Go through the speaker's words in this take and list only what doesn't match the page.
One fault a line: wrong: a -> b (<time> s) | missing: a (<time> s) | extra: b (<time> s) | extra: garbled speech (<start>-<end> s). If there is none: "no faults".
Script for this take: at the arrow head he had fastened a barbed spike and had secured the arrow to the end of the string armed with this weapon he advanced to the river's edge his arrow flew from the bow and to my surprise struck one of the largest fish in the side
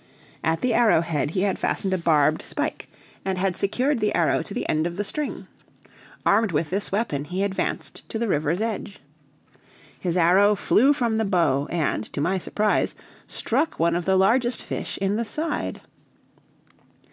no faults